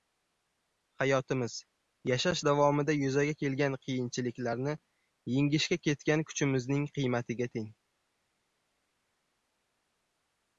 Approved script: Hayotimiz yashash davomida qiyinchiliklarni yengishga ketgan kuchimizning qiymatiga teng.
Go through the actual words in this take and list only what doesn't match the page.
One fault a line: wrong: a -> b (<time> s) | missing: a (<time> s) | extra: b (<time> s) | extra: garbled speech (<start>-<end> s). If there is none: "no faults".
extra: yuzaga kelgan (3.0 s)